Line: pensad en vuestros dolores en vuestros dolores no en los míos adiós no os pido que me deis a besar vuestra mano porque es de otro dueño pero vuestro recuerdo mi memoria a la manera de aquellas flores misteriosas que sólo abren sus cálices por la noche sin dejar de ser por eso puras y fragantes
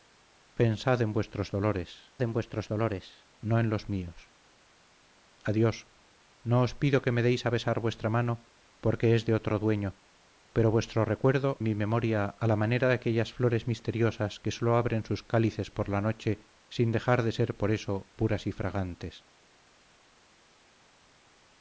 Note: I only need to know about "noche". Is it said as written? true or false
true